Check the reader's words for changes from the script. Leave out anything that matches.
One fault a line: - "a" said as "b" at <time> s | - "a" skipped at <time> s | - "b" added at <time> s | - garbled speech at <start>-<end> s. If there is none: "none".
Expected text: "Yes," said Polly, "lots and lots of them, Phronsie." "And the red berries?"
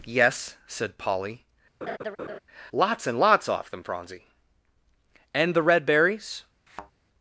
- "of" said as "off" at 3.5 s